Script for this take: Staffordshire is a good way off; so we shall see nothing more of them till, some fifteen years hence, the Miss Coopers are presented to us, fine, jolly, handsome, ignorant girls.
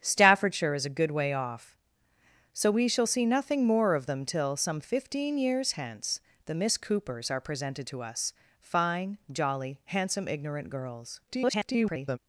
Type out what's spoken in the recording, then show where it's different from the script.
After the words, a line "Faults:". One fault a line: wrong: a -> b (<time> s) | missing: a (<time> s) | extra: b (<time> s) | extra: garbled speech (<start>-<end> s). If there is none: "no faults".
Staffordshire is a good way off; so we shall see nothing more of them till, some fifteen years hence, the Miss Coopers are presented to us, fine, jolly, handsome, ignorant girls. [garbled]
Faults:
extra: garbled speech (11.3-12.2 s)